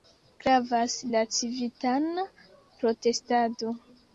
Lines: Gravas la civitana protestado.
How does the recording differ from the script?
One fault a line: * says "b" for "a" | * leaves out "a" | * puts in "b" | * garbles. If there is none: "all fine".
all fine